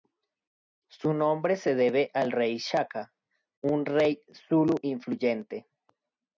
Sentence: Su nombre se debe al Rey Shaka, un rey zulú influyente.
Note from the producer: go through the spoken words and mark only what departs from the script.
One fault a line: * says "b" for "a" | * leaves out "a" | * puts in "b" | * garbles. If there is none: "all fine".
all fine